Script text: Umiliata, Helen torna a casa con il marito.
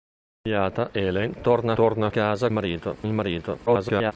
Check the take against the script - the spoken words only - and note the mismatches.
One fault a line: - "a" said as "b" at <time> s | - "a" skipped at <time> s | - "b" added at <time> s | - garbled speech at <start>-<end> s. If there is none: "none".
- "torna" added at 1.7 s
- "con" said as "marito" at 2.5 s
- garbled speech at 3.7-4.1 s